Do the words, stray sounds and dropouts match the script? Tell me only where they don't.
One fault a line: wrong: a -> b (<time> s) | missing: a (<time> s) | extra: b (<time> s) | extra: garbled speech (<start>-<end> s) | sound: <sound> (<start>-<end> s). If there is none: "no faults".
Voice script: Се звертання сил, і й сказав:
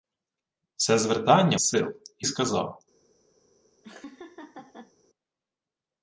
sound: laugh (3.8-4.9 s)